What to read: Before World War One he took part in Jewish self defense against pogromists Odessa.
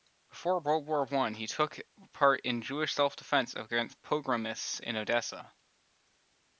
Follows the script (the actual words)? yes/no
no